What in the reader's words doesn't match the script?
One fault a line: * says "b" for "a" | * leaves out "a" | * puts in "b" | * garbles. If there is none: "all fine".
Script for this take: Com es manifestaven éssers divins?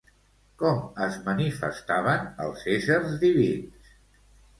* puts in "els"